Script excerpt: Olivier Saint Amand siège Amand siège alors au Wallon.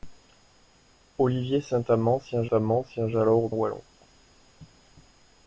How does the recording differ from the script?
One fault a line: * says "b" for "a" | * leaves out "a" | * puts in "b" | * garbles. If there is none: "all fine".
all fine